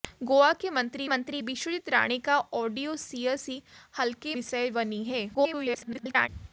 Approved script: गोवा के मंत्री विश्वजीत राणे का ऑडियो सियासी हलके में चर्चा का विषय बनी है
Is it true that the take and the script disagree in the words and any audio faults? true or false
true